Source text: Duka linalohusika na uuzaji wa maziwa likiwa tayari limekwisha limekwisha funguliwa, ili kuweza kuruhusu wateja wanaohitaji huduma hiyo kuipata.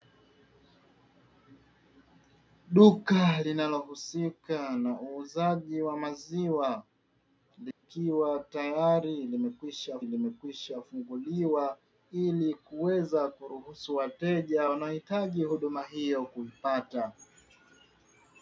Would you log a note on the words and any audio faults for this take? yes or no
yes